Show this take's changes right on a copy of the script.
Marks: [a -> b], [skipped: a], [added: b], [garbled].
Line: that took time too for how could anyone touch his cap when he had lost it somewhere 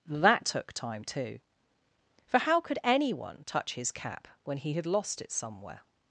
that took time too for how could anyone touch his cap when he had lost it somewhere